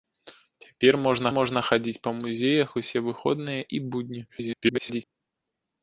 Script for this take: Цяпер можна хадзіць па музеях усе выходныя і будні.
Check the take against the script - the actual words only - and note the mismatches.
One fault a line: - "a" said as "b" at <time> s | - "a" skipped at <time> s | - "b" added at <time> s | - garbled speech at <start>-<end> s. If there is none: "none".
- "можна" added at 1.4 s
- garbled speech at 4.3-5.0 s